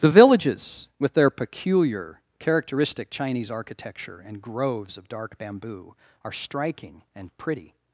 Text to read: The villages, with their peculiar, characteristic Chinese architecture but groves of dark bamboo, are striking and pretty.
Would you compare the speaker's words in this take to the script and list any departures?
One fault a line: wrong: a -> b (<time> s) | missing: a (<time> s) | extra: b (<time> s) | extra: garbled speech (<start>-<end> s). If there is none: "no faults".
wrong: but -> and (4.3 s)